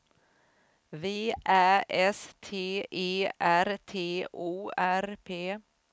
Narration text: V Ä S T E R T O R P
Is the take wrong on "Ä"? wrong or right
right